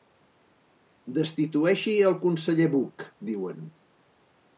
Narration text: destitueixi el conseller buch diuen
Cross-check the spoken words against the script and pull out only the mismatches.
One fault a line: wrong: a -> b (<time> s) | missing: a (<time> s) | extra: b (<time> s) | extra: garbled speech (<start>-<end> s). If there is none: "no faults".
no faults